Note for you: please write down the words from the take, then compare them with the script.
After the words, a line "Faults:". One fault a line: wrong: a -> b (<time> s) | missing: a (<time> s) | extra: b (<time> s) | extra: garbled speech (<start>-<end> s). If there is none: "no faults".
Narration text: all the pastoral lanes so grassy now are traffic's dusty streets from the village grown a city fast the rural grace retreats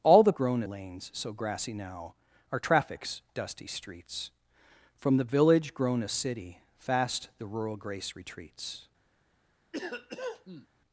all the grown lanes so grassy now are traffic's dusty streets from the village grown a city fast the rural grace retreats
Faults:
wrong: pastoral -> grown (0.3 s)